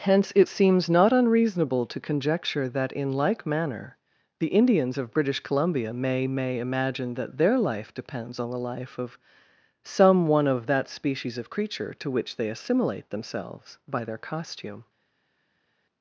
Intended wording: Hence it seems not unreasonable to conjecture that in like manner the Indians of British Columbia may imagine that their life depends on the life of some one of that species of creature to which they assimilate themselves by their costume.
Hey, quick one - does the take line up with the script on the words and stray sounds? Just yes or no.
no